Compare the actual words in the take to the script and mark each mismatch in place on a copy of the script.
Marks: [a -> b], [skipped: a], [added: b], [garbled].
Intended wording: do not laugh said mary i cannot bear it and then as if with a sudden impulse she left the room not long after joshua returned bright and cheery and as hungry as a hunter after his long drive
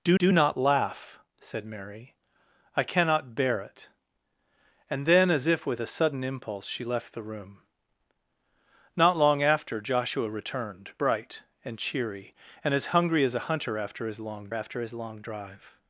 do [added: do] not laugh said mary i cannot bear it and then as if with a sudden impulse she left the room not long after joshua returned bright and cheery and as hungry as a hunter after his long [added: after his long] drive